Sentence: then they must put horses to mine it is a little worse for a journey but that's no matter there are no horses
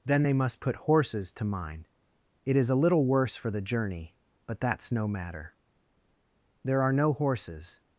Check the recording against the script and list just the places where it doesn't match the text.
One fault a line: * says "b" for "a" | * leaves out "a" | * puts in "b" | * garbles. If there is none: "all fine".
* says "the" for "a"